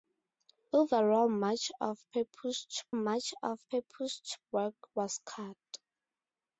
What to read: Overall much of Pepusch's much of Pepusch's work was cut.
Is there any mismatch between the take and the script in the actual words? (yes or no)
no